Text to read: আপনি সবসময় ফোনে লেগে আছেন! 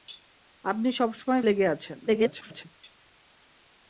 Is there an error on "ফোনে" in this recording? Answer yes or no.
yes